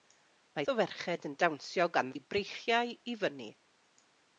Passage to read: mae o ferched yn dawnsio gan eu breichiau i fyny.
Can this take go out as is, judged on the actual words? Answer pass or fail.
pass